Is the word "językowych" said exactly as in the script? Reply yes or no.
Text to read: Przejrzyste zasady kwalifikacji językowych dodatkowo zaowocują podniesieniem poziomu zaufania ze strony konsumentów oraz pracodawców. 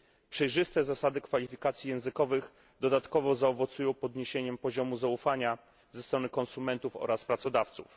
yes